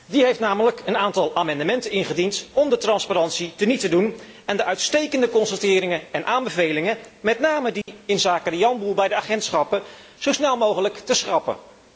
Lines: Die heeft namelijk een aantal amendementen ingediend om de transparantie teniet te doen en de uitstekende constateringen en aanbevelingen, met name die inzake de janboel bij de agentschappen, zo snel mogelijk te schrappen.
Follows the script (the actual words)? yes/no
yes